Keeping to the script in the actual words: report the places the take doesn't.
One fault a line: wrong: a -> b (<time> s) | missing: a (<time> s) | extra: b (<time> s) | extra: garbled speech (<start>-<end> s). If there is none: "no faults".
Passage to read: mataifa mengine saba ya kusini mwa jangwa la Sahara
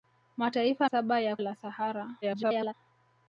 missing: mengine (0.9 s)
missing: kusini mwa jangwa (1.4 s)
extra: garbled speech (2.2-2.7 s)